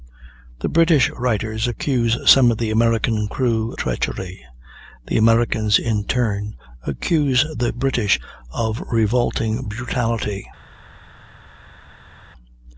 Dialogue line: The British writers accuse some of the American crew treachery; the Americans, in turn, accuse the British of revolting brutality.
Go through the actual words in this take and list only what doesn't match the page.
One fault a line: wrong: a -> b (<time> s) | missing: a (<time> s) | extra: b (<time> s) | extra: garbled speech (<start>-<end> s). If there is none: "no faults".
no faults